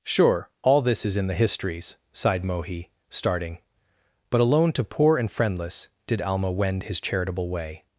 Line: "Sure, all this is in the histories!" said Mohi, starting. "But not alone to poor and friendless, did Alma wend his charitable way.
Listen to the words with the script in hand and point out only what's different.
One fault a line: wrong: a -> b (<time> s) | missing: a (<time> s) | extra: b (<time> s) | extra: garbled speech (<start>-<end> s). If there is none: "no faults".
wrong: said -> sighed (2.1 s)
missing: not (4.4 s)